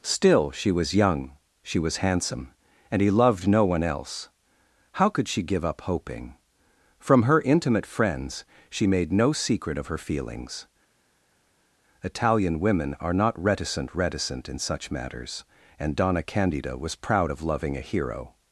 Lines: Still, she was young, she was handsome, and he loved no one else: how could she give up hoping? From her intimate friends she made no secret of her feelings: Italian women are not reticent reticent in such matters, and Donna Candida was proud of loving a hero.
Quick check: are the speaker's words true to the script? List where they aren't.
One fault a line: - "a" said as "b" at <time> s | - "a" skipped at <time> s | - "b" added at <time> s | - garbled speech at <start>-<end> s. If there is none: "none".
none